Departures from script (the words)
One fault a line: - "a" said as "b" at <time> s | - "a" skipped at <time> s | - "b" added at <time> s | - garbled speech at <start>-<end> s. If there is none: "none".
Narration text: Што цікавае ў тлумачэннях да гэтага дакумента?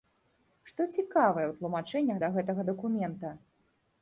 none